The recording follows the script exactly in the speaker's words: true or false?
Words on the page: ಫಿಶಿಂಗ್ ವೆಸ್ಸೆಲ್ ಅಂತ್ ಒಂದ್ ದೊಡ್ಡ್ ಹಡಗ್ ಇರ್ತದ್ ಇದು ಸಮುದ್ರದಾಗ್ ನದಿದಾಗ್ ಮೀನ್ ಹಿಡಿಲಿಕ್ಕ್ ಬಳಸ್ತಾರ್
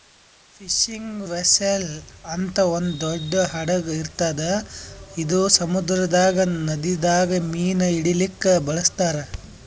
true